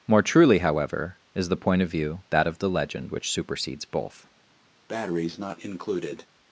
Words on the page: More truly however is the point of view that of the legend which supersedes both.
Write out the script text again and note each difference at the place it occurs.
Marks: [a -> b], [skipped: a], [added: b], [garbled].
More truly however is the point of view that of the legend which supersedes both.